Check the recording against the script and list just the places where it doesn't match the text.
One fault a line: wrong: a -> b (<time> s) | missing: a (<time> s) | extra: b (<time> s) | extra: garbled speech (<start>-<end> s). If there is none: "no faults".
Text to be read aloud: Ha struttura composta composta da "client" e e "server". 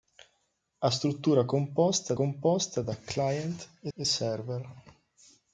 no faults